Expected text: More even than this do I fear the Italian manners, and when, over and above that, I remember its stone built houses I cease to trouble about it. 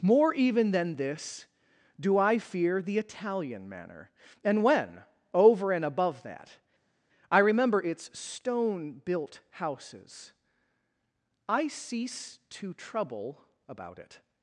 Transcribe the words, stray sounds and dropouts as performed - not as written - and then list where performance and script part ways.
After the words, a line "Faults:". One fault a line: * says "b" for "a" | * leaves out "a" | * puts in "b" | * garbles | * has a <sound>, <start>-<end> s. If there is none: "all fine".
More even than this do I fear the Italian manner, and when, over and above that, I remember its stone built houses I cease to trouble about it.
Faults:
* says "manner" for "manners"